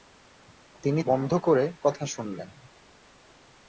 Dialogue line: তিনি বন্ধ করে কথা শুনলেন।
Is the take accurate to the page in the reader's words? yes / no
yes